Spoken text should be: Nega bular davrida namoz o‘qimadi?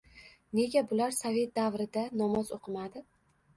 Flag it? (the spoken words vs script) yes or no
yes